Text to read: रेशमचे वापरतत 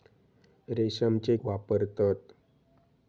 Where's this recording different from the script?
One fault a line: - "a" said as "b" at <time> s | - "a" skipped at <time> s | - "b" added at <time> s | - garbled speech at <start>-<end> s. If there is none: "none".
none